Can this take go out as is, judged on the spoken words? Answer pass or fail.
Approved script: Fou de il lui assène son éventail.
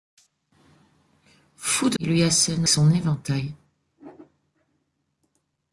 pass